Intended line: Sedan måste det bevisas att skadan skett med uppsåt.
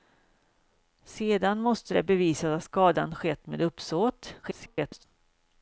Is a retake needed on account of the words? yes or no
yes